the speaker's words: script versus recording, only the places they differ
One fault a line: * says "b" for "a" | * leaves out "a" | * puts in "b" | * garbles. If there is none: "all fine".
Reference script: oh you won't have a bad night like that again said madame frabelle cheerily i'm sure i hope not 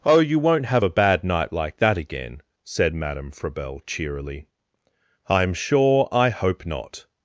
all fine